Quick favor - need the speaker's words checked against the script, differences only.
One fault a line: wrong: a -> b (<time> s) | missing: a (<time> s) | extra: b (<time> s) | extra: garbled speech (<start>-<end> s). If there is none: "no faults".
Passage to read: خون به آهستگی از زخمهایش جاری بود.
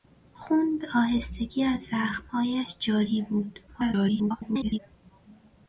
extra: garbled speech (3.7-4.8 s)